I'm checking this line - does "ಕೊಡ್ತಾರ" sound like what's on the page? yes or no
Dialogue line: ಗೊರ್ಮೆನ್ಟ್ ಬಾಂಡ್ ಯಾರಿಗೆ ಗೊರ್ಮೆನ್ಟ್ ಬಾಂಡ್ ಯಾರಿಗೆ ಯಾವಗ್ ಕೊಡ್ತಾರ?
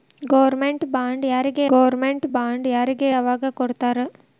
yes